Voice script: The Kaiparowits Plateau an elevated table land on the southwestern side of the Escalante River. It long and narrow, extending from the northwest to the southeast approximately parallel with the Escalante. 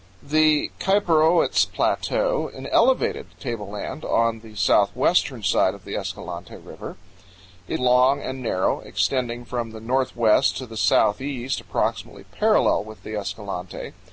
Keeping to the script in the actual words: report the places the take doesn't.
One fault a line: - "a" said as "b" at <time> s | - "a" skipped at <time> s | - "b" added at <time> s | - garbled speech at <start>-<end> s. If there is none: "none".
none